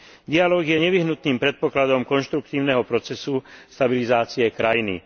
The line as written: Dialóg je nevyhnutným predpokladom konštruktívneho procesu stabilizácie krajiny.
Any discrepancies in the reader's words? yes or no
no